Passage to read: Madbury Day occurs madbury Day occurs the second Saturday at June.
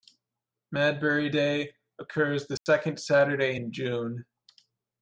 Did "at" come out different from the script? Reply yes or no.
yes